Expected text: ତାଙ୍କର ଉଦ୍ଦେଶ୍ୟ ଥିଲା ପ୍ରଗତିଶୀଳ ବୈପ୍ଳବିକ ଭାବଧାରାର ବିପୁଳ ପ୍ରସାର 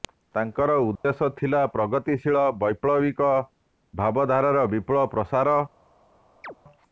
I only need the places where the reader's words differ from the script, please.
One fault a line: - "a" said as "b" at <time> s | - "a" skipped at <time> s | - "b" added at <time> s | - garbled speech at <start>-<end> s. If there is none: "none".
none